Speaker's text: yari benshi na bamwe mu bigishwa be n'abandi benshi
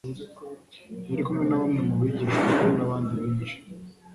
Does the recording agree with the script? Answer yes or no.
no